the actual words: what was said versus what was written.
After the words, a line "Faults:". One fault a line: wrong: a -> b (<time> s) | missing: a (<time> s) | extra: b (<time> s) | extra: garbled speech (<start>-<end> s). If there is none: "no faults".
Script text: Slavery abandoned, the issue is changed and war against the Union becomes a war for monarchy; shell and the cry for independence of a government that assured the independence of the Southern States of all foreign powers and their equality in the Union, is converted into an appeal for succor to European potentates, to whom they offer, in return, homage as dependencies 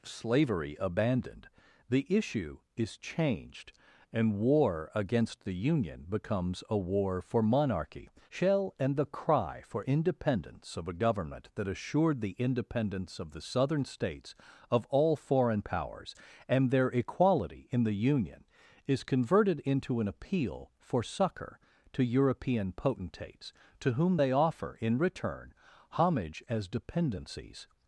Slavery abandoned, the issue is changed and war against the Union becomes a war for monarchy; shell and the cry for independence of a government that assured the independence of the Southern States of all foreign powers and their equality in the Union, is converted into an appeal for succor to European potentates, to whom they offer, in return, homage as dependencies
Faults:
no faults